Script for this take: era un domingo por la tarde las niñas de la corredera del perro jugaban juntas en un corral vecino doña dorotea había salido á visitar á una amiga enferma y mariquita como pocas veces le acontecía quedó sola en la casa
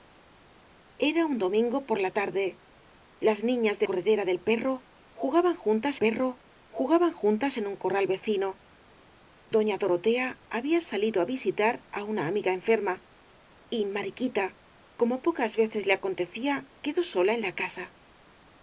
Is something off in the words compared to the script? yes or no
yes